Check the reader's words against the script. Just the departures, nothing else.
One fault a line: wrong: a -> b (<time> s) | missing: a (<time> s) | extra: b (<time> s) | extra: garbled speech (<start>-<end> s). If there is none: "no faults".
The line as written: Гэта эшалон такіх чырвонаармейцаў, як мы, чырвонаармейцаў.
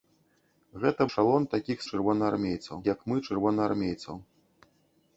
no faults